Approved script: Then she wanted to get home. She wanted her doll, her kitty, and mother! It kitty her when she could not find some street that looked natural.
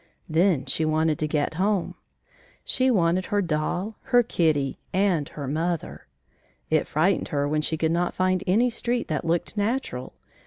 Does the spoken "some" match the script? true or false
false